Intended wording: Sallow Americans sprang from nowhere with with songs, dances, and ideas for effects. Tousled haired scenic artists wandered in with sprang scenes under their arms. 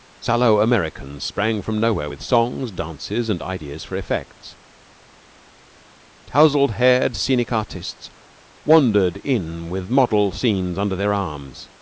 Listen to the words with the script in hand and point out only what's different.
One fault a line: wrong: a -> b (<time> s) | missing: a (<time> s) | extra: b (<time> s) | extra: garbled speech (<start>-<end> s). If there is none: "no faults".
missing: with (2.2 s)
wrong: sprang -> model (9.9 s)